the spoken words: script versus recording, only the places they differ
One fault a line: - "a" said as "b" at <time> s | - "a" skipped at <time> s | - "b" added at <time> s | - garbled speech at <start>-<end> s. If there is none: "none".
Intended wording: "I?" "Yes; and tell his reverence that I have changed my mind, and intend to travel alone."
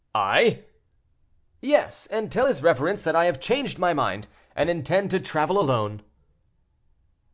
none